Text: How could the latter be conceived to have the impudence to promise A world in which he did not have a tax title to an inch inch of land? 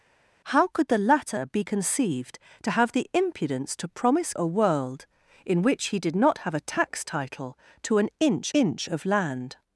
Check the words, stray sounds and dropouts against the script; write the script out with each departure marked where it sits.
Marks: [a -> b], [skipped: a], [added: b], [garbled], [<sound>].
How could the latter be conceived to have the impudence to promise A world in which he did not have a tax title to an inch inch of land?